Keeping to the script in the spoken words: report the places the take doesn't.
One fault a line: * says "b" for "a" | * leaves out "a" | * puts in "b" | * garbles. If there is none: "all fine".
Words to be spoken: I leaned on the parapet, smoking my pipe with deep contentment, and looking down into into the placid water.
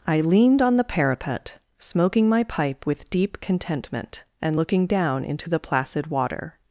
* leaves out "into"